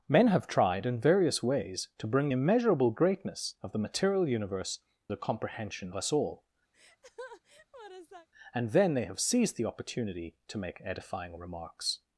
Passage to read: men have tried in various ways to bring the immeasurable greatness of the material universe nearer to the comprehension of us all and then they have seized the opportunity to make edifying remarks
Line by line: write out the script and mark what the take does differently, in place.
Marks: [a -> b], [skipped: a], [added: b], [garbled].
men have tried in various ways to bring [skipped: the] immeasurable greatness of the material universe [skipped: nearer to] the comprehension [skipped: of] us all and then they have seized the opportunity to make edifying remarks